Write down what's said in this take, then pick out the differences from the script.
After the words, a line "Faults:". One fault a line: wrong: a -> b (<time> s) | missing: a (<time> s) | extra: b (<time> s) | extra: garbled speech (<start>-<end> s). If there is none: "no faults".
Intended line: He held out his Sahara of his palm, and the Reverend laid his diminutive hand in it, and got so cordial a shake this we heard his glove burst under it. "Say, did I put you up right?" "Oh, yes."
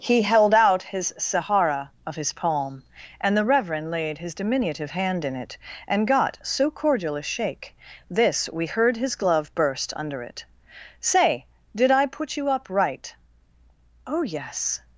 He held out his Sahara of his palm, and the Reverend laid his diminutive hand in it, and got so cordial a shake this we heard his glove burst under it. "Say, did I put you up right?" "Oh, yes."
Faults:
no faults